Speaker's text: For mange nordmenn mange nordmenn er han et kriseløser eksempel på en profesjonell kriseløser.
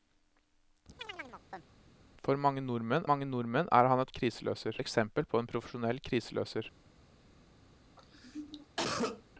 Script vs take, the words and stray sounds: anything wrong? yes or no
yes